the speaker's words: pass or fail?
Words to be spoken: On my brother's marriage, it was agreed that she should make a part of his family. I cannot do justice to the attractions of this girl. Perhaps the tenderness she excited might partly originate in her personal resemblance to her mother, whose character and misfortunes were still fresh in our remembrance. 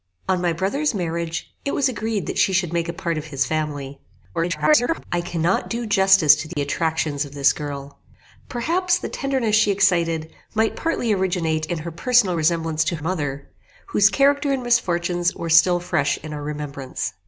fail